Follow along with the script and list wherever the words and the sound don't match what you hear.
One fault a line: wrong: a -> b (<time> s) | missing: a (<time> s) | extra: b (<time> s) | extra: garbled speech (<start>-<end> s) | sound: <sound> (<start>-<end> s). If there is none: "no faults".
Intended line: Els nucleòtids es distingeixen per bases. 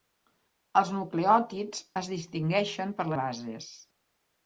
no faults